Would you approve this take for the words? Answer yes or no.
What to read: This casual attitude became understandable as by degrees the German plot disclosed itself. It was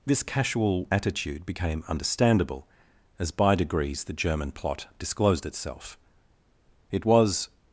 yes